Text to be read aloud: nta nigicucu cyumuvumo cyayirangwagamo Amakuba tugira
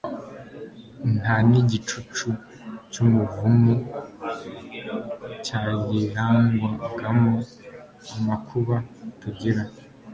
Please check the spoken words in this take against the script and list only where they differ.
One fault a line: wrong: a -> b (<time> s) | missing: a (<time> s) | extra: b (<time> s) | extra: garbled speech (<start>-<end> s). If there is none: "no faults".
no faults